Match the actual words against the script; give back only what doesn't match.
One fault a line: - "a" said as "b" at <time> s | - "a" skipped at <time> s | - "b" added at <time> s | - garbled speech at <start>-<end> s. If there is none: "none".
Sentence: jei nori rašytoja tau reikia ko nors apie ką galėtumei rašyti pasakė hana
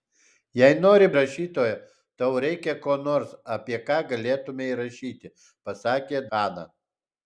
none